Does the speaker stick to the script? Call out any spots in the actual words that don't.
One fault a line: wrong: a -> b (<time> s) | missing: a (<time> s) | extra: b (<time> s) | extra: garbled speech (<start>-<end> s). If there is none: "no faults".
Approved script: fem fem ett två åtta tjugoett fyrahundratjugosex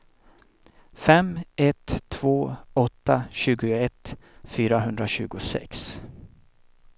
missing: fem (1.4 s)